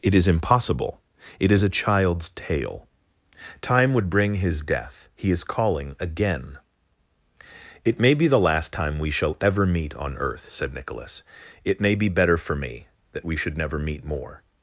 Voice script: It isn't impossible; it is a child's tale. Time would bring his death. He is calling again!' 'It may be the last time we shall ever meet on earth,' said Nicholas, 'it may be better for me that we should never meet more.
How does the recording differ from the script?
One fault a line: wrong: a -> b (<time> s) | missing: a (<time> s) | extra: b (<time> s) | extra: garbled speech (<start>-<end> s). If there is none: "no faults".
wrong: isn't -> is (0.1 s)